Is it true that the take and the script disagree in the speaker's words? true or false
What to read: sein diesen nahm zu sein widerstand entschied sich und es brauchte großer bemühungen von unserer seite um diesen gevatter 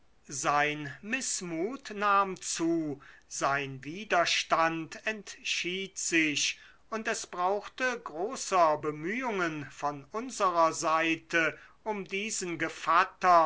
true